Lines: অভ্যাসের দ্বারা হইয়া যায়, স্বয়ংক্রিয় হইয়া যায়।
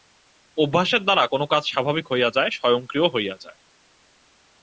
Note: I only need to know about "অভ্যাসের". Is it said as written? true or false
true